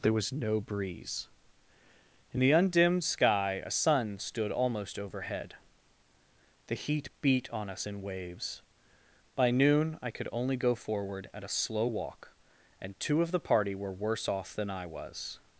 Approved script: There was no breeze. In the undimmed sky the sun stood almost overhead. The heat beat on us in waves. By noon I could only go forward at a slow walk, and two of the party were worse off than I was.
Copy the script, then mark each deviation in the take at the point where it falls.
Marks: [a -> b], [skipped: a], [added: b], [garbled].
There was no breeze. In the undimmed sky [the -> a] sun stood almost overhead. The heat beat on us in waves. By noon I could only go forward at a slow walk, and two of the party were worse off than I was.